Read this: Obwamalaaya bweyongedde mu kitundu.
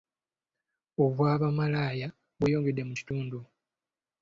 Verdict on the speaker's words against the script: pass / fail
pass